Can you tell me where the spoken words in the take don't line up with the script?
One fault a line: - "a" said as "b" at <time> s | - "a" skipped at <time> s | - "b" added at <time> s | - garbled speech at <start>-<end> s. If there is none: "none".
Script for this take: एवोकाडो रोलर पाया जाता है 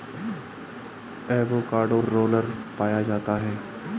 none